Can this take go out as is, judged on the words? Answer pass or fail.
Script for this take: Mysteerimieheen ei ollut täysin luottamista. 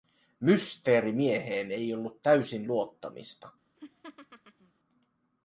pass